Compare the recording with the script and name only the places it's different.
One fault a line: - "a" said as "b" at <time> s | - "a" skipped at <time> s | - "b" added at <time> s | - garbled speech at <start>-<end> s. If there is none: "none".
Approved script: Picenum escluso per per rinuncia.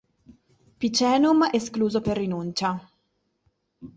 - "per" skipped at 2.2 s